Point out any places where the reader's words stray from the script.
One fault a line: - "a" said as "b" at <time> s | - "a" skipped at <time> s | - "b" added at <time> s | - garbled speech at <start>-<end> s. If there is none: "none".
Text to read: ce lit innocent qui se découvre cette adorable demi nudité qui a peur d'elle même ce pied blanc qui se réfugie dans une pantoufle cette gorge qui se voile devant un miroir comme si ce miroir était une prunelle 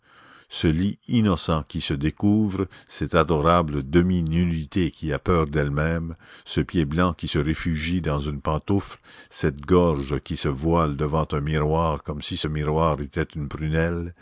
none